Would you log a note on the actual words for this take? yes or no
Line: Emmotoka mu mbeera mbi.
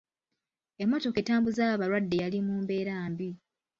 yes